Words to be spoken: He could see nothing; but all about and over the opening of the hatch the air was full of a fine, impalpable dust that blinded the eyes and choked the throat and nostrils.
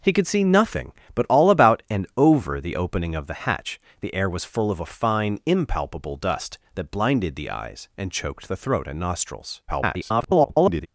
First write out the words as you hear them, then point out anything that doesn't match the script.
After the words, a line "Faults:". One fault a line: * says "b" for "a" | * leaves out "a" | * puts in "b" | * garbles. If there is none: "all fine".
He could see nothing; but all about and over the opening of the hatch the air was full of a fine, impalpable dust that blinded the eyes and choked the throat and nostrils. [garbled]
Faults:
* garbles